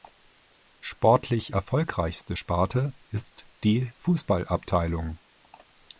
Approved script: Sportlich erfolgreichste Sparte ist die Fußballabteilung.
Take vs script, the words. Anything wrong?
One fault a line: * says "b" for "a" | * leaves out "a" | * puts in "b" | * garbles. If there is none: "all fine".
all fine